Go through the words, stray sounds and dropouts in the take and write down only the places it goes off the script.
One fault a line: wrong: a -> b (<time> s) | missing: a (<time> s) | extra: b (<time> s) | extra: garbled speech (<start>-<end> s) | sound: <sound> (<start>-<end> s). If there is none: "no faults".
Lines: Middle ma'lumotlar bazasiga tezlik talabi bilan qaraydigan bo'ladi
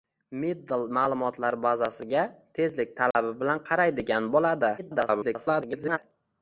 sound: dropout (3.1-3.1 s)
extra: garbled speech (4.8-6.0 s)